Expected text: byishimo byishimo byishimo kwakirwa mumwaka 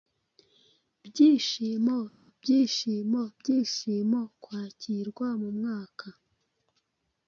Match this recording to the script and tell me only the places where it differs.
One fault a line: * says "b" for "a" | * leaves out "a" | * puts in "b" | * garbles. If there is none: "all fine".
all fine